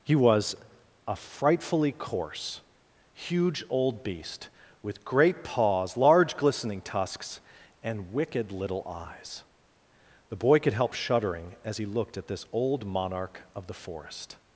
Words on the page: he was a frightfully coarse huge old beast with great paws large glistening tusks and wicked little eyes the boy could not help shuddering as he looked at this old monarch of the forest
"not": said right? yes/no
no